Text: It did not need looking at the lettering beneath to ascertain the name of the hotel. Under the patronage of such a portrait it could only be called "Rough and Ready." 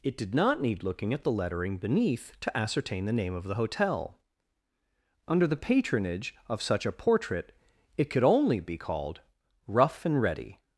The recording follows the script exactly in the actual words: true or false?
true